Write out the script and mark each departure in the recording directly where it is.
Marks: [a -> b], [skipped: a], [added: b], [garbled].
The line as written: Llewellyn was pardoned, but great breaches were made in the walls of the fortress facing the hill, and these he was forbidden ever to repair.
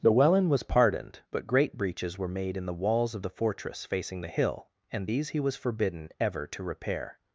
Llewellyn was pardoned, but great breaches were made in the walls of the fortress facing the hill, and these he was forbidden ever to repair.